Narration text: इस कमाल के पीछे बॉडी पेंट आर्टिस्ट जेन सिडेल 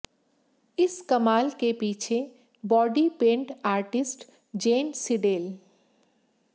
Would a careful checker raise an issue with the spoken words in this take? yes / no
no